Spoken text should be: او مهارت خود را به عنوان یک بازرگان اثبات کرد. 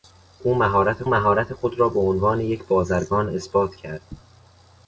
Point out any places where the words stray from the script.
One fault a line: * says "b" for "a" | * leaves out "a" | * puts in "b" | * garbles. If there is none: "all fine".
* puts in "مهارت"